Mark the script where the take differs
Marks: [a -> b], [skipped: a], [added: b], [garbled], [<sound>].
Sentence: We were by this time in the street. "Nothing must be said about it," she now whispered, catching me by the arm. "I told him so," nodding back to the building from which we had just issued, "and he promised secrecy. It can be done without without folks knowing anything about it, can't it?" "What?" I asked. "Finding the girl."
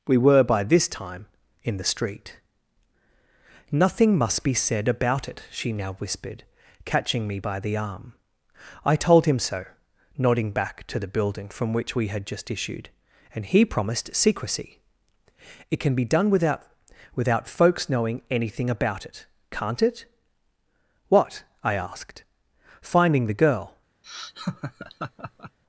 We were by this time in the street. "Nothing must be said about it," she now whispered, catching me by the arm. "I told him so," nodding back to the building from which we had just issued, "and he promised secrecy. It can be done without without folks knowing anything about it, can't it?" "What?" I asked. "Finding the girl." [laugh]